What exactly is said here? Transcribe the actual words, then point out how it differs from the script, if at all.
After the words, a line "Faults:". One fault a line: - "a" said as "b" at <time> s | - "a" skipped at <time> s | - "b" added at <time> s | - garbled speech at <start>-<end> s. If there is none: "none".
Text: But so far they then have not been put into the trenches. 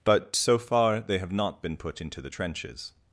But so far they have not been put into the trenches.
Faults:
- "then" skipped at 1.2 s